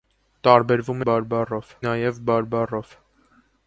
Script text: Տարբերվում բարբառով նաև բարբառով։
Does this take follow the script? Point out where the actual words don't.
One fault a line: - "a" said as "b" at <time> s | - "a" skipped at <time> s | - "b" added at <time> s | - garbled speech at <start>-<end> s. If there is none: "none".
none